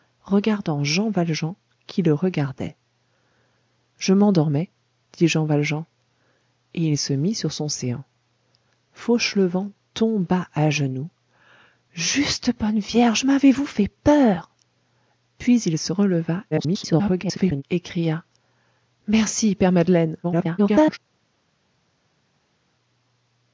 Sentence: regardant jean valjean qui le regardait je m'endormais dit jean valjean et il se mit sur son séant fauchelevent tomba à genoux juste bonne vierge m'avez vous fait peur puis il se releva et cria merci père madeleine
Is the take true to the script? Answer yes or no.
no